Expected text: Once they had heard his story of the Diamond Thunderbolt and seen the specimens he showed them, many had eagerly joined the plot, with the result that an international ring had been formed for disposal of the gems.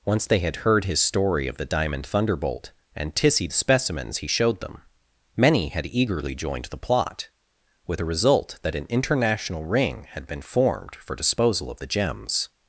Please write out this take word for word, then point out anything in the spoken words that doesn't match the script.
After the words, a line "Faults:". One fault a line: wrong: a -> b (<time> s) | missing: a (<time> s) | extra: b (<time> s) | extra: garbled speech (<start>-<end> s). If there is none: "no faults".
Once they had heard his story of the Diamond Thunderbolt and tissy the specimens he showed them, many had eagerly joined the plot, with the result that an international ring had been formed for disposal of the gems.
Faults:
wrong: seen -> tissy (3.1 s)